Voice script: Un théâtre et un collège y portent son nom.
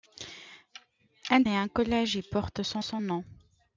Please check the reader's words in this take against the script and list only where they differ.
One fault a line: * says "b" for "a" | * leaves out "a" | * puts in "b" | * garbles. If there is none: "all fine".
* leaves out "théâtre"
* puts in "son"